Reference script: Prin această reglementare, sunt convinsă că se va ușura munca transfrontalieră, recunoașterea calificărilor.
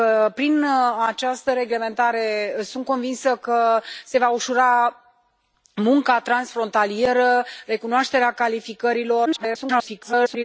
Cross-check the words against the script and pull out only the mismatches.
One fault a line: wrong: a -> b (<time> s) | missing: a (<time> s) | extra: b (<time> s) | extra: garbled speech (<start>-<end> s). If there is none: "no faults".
extra: garbled speech (9.3-10.4 s)